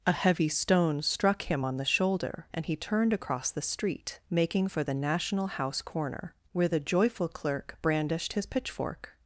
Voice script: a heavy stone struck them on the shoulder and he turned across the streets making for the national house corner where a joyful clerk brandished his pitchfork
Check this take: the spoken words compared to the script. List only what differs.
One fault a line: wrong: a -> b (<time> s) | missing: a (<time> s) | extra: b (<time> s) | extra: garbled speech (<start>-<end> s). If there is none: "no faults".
wrong: them -> him (1.4 s)
wrong: streets -> street (3.6 s)
wrong: a -> the (6.7 s)